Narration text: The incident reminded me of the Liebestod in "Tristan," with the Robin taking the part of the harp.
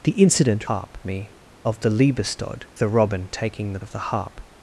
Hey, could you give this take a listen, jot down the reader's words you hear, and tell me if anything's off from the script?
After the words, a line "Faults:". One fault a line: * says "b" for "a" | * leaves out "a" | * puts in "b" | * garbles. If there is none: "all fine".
The incident harp me of the Liebestod the Robin taking the of the harp.
Faults:
* says "harp" for "reminded"
* leaves out "in Tristan with"
* leaves out "part"